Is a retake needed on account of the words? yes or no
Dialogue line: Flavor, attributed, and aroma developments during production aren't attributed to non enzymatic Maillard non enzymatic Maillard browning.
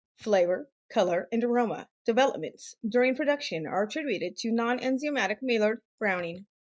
yes